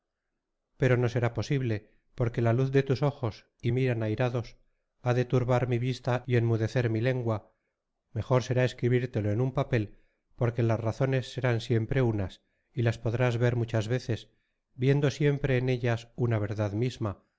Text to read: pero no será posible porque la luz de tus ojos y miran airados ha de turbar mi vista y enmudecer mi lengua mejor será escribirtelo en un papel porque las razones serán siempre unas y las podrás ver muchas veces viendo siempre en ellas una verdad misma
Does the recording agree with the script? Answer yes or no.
yes